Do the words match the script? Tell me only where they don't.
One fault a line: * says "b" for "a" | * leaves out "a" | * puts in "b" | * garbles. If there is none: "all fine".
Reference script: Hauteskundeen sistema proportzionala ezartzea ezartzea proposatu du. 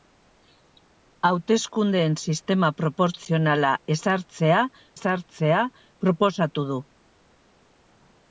all fine